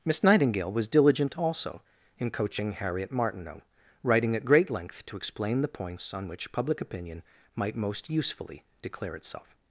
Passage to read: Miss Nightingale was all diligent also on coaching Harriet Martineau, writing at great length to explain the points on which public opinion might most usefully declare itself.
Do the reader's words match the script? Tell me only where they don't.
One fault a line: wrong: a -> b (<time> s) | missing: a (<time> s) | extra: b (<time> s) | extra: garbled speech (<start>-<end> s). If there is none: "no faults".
missing: all (0.9 s)
wrong: on -> in (2.2 s)